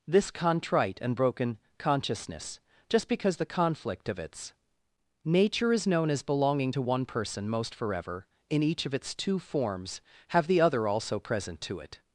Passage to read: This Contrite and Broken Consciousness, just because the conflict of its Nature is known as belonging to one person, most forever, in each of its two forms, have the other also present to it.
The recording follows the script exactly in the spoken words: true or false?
true